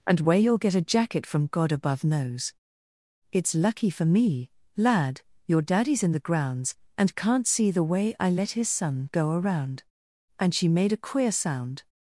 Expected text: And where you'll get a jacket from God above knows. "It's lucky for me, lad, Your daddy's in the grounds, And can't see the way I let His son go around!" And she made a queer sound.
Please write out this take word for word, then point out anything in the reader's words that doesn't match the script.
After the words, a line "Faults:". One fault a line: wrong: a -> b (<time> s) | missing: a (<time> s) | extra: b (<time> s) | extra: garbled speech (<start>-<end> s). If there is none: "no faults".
And where you'll get a jacket from God above knows. "It's lucky for me, lad, Your daddy's in the grounds, And can't see the way I let His son go around!" And she made a queer sound.
Faults:
no faults